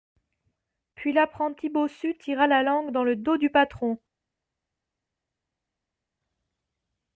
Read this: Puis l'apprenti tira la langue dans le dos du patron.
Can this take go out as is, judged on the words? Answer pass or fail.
fail